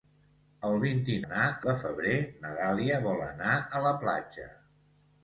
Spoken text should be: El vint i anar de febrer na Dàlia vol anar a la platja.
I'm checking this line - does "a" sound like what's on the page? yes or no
yes